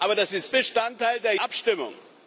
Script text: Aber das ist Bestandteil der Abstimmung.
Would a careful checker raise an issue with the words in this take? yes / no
no